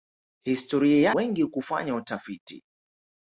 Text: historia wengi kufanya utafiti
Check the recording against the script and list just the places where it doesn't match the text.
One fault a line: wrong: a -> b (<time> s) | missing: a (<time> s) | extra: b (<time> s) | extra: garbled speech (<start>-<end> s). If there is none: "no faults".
no faults